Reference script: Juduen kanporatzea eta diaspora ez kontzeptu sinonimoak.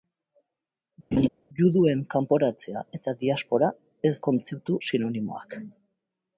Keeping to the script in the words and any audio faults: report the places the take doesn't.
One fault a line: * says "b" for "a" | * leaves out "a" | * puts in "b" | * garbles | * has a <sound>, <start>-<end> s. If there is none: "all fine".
* has a laugh, 1.1-1.3 s